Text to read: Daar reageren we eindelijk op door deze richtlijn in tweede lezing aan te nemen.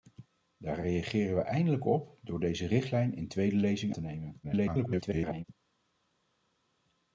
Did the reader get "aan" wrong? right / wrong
wrong